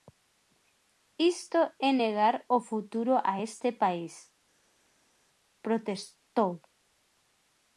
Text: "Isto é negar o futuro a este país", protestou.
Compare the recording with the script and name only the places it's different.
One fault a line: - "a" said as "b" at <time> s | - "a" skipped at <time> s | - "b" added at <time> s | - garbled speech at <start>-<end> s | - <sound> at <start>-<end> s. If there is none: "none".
none